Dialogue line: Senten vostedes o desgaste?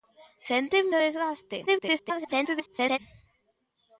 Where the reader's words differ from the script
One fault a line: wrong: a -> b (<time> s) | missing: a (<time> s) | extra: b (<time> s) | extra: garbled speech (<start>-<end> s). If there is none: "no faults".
missing: vostedes (0.9 s)
extra: garbled speech (1.7-3.0 s)